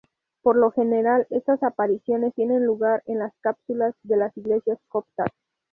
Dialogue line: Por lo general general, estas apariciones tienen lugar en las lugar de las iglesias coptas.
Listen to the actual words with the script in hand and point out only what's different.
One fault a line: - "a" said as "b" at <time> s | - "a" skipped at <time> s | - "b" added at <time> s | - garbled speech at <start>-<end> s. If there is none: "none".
- "general" skipped at 1.3 s
- "lugar" said as "cúpulas" at 3.4 s